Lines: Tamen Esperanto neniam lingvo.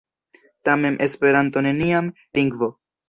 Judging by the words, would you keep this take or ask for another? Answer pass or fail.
pass